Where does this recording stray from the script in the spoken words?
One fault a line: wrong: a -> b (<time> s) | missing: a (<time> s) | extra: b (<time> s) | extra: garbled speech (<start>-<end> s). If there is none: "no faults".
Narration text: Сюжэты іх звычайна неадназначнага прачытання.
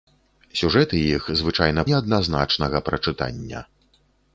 no faults